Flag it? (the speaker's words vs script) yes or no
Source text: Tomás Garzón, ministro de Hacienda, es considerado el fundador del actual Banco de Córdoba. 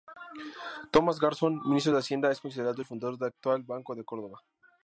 no